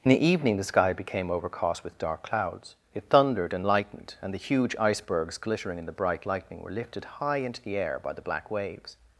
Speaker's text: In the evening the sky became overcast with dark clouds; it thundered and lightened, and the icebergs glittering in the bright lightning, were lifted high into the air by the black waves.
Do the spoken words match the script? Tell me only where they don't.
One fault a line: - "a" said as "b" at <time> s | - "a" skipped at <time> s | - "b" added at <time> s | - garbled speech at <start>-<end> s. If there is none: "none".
- "huge" added at 4.5 s